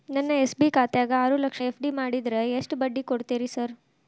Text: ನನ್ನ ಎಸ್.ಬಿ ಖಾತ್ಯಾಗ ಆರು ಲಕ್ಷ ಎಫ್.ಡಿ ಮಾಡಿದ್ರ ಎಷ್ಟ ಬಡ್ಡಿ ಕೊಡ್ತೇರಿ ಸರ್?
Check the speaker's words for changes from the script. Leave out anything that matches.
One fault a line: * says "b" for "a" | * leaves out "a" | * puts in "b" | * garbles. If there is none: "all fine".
all fine